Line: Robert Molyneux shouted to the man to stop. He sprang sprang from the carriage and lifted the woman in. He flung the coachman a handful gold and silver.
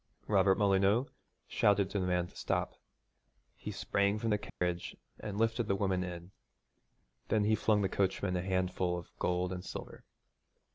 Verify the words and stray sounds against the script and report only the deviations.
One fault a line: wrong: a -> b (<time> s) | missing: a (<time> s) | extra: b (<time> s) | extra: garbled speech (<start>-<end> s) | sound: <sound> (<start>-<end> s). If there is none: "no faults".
missing: sprang (4.2 s)
sound: dropout (4.5-4.6 s)
extra: Then (7.3 s)
extra: of (9.0 s)